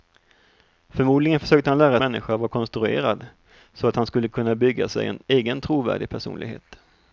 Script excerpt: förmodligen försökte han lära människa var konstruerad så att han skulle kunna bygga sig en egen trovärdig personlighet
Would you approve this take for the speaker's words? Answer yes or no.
yes